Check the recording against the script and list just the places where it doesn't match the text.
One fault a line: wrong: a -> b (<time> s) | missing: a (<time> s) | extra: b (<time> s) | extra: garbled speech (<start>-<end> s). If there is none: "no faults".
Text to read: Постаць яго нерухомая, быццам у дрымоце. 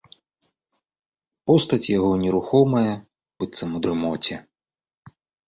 no faults